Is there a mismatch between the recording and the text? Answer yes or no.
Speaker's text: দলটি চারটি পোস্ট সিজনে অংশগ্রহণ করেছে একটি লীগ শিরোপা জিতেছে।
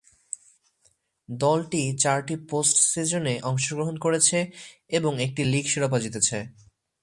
yes